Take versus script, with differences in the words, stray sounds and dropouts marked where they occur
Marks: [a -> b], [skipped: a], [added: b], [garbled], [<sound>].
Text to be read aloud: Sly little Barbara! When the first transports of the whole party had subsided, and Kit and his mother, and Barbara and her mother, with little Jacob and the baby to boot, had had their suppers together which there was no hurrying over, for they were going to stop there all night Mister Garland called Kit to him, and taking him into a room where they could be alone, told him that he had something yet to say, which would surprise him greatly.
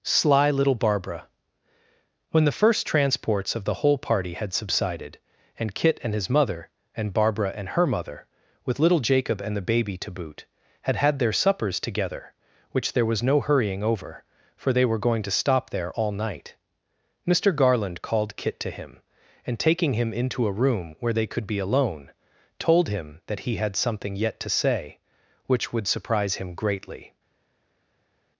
Sly little Barbara! When the first transports of the whole party had subsided, and Kit and his mother, and Barbara and her mother, with little Jacob and the baby to boot, had had their suppers together which there was no hurrying over, for they were going to stop there all night Mister Garland called Kit to him, and taking him into a room where they could be alone, told him that he had something yet to say, which would surprise him greatly.